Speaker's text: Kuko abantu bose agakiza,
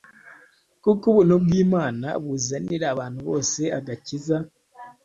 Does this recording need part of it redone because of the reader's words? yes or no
yes